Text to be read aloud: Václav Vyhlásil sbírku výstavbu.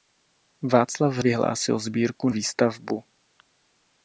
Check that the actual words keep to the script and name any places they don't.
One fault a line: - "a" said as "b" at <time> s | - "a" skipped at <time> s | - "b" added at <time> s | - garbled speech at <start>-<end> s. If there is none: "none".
none